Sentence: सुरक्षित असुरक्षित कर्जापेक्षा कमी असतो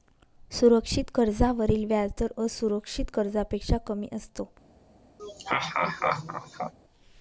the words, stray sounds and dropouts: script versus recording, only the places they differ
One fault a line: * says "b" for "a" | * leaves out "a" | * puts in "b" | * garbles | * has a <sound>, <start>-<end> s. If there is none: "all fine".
* puts in "कर्जावरील व्याजदर"
* has a laugh, 5.2-6.7 s